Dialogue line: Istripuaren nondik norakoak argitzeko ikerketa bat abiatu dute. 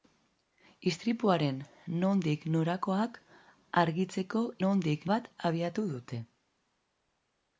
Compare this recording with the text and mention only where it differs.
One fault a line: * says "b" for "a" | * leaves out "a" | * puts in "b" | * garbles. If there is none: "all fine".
* says "nondik" for "ikerketa"